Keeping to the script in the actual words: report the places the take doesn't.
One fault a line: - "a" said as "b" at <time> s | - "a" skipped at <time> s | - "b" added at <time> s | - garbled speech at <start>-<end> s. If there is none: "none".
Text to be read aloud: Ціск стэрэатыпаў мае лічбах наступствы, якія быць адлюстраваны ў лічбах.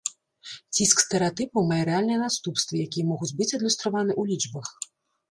- "лічбах" said as "рэальныя" at 1.9 s
- "могуць" added at 3.1 s